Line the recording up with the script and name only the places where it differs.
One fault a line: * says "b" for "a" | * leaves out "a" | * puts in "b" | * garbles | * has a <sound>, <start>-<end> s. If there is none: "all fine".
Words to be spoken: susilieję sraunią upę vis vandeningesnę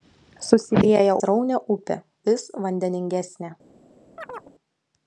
* has a chirp, 4.2-4.5 s